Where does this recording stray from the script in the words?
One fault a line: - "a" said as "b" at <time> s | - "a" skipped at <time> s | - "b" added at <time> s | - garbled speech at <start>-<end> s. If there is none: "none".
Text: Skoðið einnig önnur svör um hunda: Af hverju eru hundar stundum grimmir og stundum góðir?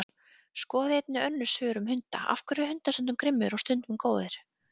none